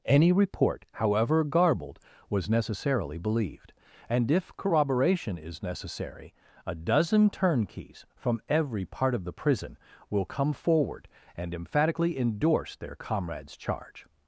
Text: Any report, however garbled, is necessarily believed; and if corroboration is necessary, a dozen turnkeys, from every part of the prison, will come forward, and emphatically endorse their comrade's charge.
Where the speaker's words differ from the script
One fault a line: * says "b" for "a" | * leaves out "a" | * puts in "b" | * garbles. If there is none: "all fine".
* says "was" for "is"